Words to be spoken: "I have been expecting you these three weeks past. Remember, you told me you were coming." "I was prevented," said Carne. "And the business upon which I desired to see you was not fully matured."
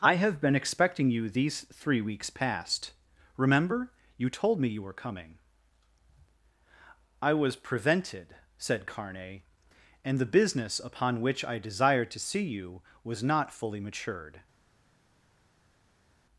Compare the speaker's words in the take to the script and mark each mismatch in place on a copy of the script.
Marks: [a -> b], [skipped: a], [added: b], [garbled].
"I have been expecting you these three weeks past. Remember, you told me you were coming." "I was prevented," said Carne. "And the business upon which I desired to see you was not fully matured."